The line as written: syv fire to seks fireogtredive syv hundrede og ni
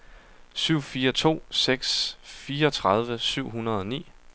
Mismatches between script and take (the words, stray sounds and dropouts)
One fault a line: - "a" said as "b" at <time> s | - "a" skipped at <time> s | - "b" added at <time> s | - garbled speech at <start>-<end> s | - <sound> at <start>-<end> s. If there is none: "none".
none